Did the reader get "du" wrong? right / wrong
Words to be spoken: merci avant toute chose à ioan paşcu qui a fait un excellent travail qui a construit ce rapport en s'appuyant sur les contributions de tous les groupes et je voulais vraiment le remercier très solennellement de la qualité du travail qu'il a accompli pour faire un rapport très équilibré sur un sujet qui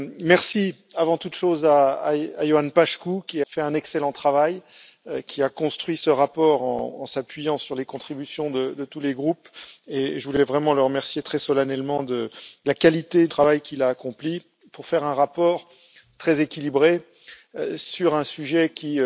wrong